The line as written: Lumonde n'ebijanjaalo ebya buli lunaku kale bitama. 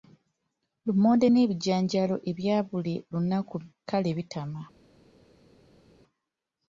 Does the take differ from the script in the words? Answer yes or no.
no